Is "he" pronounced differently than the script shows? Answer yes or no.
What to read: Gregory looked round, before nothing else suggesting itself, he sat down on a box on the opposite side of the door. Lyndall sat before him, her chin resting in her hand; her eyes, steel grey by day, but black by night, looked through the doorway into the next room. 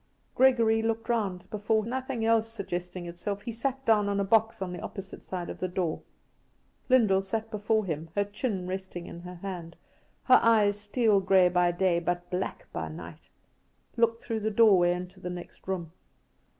no